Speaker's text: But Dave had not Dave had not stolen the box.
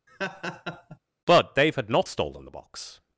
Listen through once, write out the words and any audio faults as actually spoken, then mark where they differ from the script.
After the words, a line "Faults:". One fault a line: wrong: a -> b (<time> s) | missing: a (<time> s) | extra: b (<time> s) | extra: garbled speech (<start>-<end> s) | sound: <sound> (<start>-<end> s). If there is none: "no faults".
But Dave had not stolen the box.
Faults:
sound: laugh (0.1-1.0 s)
missing: Dave had not (2.1 s)